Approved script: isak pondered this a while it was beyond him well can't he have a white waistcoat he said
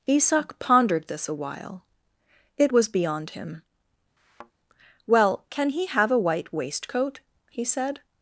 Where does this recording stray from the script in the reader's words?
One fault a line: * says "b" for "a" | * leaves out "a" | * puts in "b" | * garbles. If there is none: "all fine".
* says "can" for "can't"